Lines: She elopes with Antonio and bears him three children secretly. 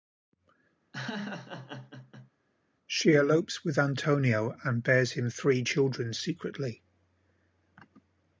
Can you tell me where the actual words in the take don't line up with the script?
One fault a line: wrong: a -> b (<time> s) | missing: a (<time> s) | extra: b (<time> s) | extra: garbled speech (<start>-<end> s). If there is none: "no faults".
no faults